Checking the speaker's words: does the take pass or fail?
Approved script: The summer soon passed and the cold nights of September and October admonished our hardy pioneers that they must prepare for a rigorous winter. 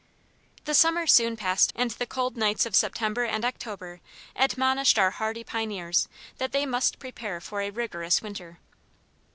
pass